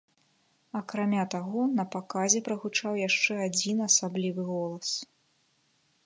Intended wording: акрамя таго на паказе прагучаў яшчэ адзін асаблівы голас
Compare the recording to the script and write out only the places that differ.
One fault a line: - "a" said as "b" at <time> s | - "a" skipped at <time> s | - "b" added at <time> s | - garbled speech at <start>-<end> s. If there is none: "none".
none